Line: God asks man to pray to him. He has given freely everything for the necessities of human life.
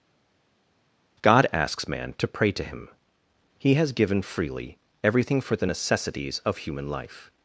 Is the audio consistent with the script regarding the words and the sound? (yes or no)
yes